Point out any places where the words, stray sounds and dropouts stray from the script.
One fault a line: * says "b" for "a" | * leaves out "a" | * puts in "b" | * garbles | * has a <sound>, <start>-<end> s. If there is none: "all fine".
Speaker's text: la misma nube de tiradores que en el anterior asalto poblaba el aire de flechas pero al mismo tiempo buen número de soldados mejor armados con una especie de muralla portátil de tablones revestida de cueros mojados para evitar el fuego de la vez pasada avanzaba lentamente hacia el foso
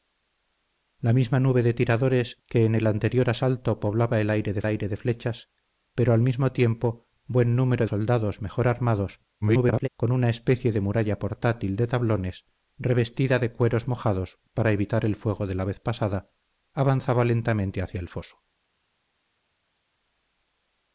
* puts in "aire de"
* leaves out "de"
* garbles